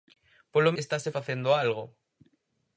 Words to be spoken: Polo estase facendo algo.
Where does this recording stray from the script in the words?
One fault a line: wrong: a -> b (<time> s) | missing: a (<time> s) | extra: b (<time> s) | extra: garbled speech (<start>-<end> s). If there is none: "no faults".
no faults